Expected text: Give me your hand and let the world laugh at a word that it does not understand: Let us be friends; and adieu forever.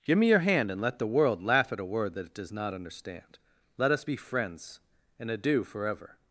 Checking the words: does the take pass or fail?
pass